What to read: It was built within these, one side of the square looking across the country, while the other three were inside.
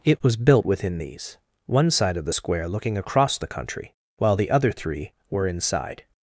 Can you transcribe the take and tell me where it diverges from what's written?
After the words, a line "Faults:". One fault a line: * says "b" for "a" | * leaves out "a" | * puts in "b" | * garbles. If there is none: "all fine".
It was built within these, one side of the square looking across the country, while the other three were inside.
Faults:
all fine